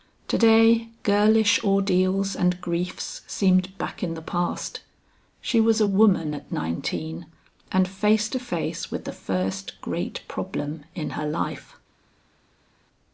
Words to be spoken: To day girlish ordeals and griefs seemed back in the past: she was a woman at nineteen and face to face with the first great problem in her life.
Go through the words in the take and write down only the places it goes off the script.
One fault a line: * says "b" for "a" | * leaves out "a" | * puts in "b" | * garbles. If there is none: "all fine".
all fine